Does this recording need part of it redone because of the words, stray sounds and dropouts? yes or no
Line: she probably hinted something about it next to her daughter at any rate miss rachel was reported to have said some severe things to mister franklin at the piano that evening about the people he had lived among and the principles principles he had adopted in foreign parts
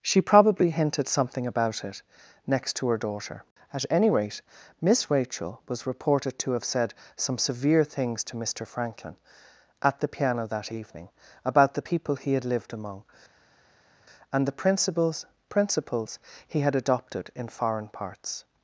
no